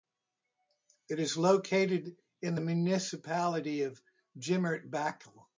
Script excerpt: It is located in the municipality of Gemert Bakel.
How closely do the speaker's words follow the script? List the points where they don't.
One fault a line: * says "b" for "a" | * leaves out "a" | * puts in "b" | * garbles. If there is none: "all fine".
all fine